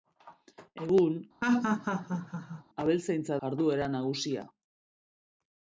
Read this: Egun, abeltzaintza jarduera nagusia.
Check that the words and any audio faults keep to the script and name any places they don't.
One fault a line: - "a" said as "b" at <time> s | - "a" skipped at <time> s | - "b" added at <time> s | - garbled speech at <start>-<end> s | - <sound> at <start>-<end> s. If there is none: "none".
- laugh at 1.4-2.6 s